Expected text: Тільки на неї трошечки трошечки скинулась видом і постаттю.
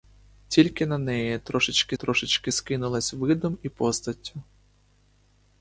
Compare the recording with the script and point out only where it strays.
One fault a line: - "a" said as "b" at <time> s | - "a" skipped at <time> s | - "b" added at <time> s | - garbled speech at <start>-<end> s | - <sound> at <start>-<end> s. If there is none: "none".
none